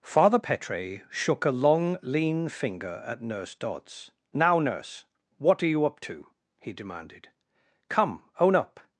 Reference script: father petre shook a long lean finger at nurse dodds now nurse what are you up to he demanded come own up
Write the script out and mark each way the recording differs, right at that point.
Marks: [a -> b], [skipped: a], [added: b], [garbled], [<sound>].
father petre shook a long lean finger at nurse dodds now nurse what are you up to he demanded come own up